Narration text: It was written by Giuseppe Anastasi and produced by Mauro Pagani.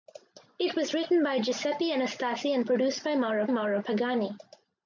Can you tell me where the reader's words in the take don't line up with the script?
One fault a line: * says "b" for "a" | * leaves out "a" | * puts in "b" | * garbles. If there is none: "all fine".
* puts in "Mauro"